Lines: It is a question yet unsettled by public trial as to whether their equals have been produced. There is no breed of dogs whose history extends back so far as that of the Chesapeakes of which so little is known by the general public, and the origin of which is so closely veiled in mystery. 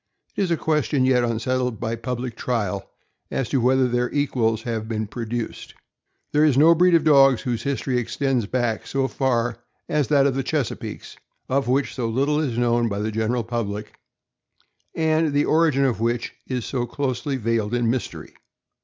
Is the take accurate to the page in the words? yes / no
yes